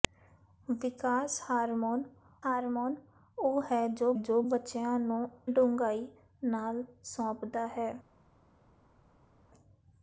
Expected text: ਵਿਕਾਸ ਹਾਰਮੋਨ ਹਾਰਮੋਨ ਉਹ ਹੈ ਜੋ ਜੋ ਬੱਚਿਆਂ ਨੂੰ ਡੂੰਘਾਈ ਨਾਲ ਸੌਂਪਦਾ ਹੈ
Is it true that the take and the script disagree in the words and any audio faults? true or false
false